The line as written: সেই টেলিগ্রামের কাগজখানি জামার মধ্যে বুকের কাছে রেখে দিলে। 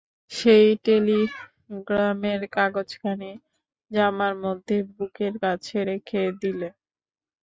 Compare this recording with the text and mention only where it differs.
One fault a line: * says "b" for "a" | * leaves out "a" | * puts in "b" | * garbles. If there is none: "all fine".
all fine